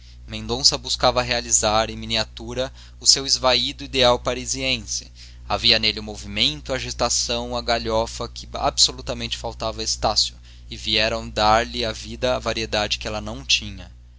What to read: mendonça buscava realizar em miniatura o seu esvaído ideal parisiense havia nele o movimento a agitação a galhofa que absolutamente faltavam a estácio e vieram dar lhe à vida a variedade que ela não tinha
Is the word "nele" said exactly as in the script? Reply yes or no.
yes